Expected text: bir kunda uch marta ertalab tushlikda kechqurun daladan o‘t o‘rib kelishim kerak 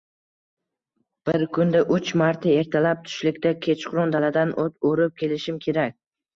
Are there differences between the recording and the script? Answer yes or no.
no